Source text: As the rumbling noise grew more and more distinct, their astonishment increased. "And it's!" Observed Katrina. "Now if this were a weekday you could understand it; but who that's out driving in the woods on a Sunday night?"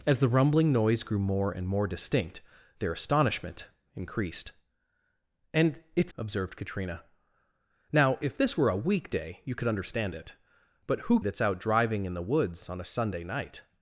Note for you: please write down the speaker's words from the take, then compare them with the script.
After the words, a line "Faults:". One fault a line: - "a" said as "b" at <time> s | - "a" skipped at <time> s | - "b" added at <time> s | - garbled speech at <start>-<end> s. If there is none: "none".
As the rumbling noise grew more and more distinct, their astonishment increased. "And it's!" Observed Katrina. "Now if this were a weekday you could understand it; but who that's out driving in the woods on a Sunday night?"
Faults:
none